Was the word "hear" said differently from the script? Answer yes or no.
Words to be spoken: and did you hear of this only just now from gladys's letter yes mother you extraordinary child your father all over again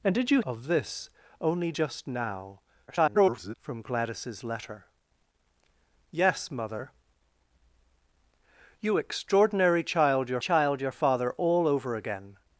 yes